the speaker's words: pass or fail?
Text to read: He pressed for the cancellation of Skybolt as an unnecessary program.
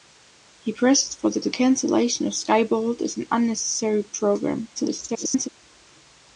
fail